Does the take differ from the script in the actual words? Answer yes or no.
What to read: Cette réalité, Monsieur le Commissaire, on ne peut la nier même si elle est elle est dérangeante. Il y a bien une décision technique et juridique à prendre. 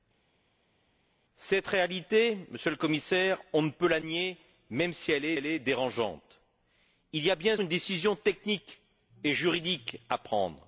no